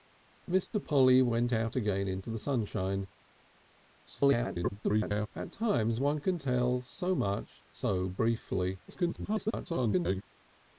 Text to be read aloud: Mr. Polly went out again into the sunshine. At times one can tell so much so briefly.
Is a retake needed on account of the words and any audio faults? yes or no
yes